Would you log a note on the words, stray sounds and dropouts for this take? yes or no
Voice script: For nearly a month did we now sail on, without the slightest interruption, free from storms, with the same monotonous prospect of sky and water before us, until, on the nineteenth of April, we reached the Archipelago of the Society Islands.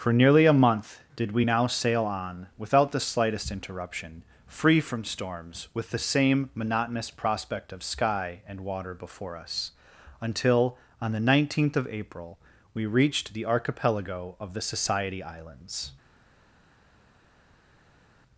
no